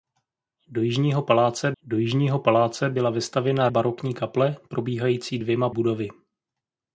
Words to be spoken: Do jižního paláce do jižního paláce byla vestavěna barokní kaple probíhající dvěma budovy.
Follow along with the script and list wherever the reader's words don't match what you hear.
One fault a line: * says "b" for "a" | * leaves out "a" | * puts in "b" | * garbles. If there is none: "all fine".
all fine